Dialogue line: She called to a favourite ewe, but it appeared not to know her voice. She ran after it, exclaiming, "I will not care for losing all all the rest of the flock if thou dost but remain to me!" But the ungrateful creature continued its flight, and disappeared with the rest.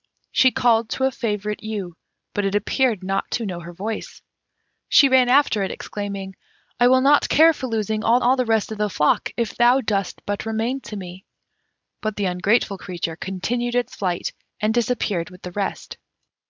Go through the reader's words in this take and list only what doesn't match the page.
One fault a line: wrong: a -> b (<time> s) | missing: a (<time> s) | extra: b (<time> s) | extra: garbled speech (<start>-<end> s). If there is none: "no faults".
no faults